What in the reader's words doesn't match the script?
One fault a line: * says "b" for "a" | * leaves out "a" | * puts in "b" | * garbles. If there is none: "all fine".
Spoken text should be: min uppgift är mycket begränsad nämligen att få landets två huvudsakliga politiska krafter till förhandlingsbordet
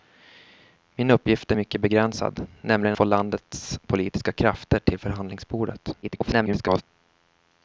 * leaves out "att"
* leaves out "två huvudsakliga"
* garbles